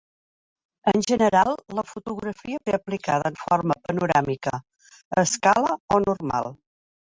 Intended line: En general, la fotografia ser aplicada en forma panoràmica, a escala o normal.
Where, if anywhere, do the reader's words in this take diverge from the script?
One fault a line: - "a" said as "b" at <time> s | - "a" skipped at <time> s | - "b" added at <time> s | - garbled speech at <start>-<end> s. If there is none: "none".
none